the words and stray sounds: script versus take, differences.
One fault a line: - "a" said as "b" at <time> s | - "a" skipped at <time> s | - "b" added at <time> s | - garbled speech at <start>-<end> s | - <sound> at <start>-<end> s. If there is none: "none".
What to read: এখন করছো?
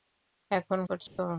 - dropout at 1.1-1.2 s